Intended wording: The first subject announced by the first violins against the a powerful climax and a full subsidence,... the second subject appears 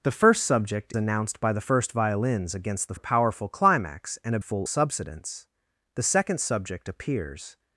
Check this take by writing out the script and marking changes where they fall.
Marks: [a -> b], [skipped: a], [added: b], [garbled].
The first subject announced by the first violins against the a powerful climax and a full subsidence,... the second subject appears